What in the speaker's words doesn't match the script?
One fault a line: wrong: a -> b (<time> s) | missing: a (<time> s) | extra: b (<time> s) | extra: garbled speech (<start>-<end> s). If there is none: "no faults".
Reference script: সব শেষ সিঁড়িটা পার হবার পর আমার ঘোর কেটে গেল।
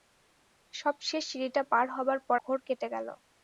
missing: আমার (2.4 s)